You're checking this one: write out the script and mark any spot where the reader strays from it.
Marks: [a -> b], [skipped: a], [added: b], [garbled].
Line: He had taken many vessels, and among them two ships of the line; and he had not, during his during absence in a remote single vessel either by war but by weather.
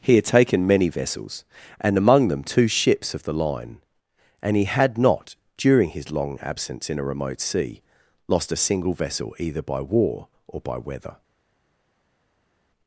He had taken many vessels, and among them two ships of the line; and he had not, during his [during -> long] absence in a remote [added: sea lost a] single vessel either by war [but -> or] by weather.